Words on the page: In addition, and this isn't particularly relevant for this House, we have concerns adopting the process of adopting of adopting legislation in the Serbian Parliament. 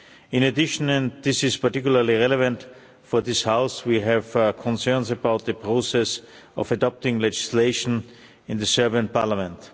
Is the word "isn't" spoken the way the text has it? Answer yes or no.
no